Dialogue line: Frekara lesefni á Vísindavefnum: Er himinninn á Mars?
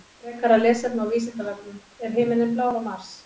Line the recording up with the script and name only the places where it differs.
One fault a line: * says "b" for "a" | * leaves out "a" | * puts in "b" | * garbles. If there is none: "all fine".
* puts in "blár"